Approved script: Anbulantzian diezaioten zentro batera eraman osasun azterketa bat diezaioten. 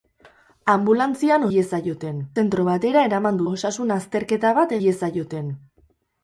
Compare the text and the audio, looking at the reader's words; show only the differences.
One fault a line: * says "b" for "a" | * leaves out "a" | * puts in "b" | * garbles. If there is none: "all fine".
all fine